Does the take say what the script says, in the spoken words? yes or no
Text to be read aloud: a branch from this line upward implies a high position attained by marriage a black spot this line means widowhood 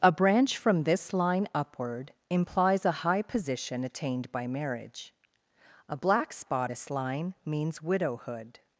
yes